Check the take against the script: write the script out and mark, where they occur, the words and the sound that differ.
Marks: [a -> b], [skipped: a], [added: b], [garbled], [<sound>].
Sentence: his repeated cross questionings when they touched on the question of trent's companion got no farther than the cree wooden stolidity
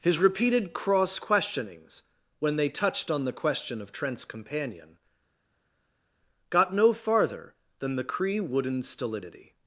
his repeated cross questionings when they touched on the question of trent's companion got no farther than the cree wooden stolidity